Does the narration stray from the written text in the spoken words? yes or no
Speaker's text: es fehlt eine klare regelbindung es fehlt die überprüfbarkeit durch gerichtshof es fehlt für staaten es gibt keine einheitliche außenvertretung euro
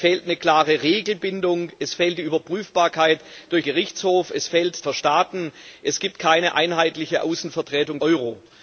no